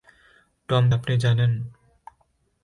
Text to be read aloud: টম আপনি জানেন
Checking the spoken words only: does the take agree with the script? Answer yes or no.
yes